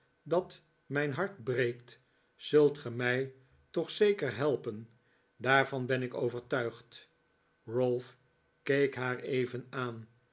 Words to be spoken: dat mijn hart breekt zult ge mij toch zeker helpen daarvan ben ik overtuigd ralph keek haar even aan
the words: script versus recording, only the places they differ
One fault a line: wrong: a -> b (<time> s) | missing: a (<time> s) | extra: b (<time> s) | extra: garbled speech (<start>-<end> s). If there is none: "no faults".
no faults